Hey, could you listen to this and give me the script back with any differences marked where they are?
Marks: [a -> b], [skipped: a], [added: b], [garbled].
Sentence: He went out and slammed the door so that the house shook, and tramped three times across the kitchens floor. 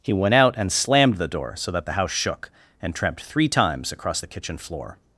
He went out and slammed the door so that the house shook, and tramped three times across the [kitchens -> kitchen] floor.